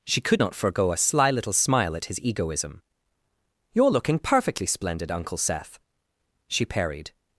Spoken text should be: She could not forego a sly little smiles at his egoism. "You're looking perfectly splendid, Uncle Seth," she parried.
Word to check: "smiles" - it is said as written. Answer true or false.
false